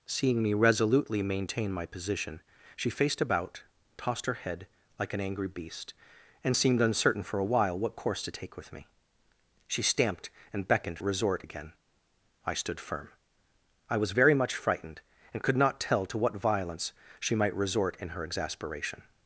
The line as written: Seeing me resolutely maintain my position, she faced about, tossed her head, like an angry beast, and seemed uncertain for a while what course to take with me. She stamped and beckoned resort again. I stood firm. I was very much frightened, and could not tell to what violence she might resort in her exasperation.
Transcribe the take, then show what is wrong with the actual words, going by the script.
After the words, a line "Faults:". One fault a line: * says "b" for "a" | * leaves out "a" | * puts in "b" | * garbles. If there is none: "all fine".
Seeing me resolutely maintain my position, she faced about, tossed her head, like an angry beast, and seemed uncertain for a while what course to take with me. She stamped and beckoned resort again. I stood firm. I was very much frightened, and could not tell to what violence she might resort in her exasperation.
Faults:
all fine